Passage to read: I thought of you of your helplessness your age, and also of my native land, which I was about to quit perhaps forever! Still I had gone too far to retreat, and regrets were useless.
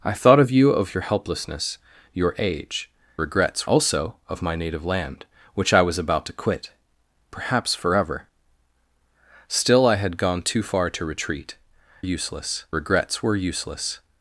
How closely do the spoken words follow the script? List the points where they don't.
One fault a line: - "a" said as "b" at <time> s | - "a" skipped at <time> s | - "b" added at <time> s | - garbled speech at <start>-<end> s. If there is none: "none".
- "and" said as "regrets" at 3.2 s
- "and" said as "useless" at 12.0 s